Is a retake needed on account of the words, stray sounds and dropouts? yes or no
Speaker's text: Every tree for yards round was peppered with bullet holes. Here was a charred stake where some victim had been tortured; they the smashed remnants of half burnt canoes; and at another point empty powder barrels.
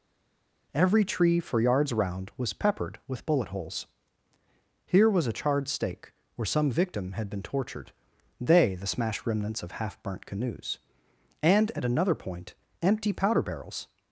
no